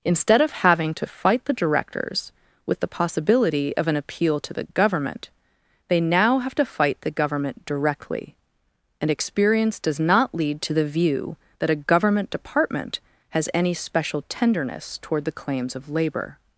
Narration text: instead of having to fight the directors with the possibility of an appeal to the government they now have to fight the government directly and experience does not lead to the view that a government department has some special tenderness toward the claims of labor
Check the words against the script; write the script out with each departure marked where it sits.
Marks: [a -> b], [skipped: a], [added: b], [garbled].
instead of having to fight the directors with the possibility of an appeal to the government they now have to fight the government directly and experience does not lead to the view that a government department has [some -> any] special tenderness toward the claims of labor